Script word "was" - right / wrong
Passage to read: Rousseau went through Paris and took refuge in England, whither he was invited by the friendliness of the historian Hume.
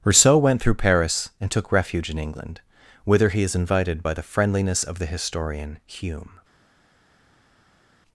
wrong